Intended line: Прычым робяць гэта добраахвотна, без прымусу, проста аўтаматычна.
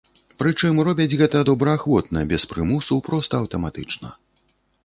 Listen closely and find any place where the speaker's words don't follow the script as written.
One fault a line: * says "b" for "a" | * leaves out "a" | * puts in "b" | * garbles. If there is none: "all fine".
all fine